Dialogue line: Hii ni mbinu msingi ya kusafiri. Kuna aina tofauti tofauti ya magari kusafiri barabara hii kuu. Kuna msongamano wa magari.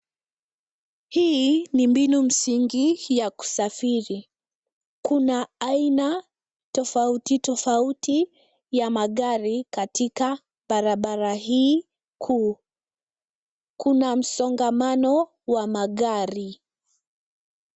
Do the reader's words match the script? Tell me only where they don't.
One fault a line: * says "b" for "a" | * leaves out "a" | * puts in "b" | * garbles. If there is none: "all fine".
* says "katika" for "kusafiri"